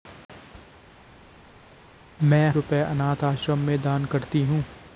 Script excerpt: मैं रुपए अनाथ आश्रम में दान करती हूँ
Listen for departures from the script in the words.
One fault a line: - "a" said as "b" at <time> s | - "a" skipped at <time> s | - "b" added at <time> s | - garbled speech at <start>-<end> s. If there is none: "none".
none